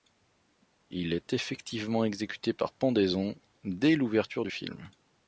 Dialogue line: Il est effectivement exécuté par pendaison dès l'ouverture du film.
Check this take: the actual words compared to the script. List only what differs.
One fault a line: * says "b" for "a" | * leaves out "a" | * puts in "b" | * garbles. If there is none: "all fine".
all fine